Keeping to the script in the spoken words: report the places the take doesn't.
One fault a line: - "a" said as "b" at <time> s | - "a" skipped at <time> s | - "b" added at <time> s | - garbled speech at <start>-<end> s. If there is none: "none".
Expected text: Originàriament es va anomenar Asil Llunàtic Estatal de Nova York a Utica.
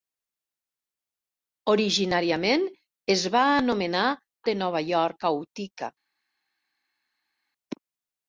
- "Asil Llunàtic Estatal" skipped at 4.0 s